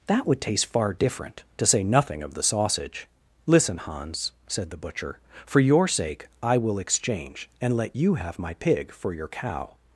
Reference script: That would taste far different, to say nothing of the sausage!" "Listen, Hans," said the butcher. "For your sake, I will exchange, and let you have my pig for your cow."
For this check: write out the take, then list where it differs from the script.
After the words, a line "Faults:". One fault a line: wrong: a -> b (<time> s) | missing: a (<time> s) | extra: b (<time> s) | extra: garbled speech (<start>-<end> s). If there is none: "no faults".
That would taste far different, to say nothing of the sausage!" "Listen, Hans," said the butcher. "For your sake, I will exchange, and let you have my pig for your cow."
Faults:
no faults